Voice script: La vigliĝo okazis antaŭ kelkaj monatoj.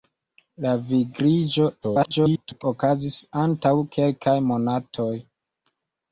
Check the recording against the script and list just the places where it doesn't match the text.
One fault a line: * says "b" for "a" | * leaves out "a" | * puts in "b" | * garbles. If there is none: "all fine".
* garbles